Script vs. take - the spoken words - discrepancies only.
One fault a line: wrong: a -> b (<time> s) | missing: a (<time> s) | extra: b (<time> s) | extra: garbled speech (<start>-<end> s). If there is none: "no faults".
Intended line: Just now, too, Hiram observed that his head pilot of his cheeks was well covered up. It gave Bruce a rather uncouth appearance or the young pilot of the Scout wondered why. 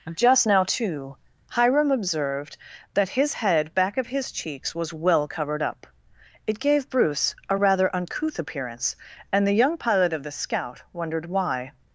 wrong: pilot -> back (3.7 s)
wrong: or -> and (9.3 s)